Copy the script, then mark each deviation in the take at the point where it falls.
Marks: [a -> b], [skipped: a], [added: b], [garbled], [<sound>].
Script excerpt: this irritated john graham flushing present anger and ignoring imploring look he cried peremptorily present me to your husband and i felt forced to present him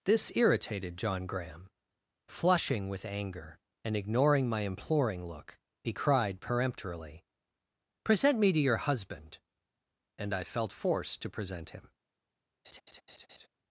this irritated john graham flushing [present -> with] anger and ignoring [added: my] imploring look he cried peremptorily present me to your husband and i felt forced to present him [laugh]